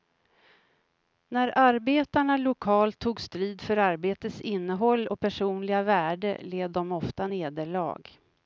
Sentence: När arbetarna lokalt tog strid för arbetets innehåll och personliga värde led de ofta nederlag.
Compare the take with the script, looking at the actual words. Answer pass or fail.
pass